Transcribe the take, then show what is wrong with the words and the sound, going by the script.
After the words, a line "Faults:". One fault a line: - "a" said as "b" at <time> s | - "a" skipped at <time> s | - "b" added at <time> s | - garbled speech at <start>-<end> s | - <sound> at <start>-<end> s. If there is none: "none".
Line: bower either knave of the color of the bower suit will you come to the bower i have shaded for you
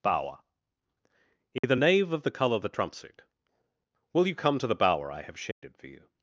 bower either knave of the color of the trump suit will you come to the bower i have shaded for you
Faults:
- dropout at 1.6-1.6 s
- "bower" said as "trump" at 2.7 s
- dropout at 5.5-5.6 s